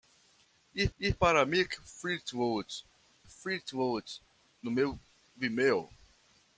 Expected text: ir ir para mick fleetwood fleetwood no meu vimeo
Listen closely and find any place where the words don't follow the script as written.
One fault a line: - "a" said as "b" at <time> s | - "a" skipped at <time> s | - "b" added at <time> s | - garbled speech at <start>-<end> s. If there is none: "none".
none